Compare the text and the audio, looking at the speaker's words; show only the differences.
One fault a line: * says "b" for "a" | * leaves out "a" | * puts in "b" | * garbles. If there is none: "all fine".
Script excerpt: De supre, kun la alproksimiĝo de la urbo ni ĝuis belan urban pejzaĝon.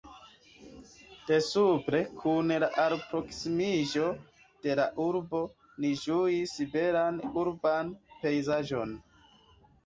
all fine